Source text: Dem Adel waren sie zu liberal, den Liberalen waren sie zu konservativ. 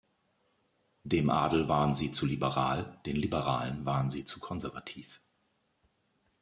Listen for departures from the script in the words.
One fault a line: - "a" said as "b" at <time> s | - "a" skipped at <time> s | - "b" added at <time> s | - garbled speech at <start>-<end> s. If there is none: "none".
none